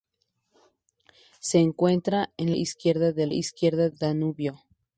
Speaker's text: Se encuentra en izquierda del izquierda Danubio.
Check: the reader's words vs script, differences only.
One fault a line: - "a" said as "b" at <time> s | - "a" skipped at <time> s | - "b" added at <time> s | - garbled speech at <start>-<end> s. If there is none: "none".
none